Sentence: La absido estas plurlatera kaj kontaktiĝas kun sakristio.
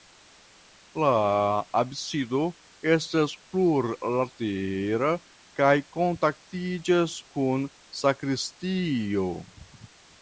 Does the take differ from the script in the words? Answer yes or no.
no